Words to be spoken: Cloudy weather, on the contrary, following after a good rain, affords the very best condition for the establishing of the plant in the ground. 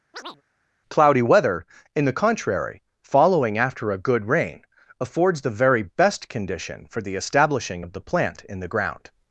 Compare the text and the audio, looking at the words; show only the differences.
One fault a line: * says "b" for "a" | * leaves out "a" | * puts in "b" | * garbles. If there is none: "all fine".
* says "in" for "on"